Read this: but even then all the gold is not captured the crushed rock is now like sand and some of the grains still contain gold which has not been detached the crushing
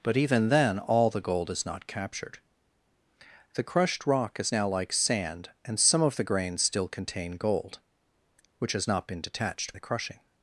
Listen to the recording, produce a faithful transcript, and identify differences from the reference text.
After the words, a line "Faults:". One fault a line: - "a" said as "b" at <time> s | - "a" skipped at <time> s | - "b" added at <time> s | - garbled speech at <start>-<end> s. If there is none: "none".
but even then all the gold is not captured the crushed rock is now like sand and some of the grains still contain gold which has not been detached the crushing
Faults:
none